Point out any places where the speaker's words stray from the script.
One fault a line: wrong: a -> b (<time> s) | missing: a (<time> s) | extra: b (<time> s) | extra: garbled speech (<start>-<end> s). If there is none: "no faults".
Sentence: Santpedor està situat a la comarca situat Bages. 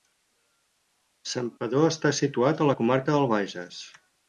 wrong: situat -> del (3.2 s)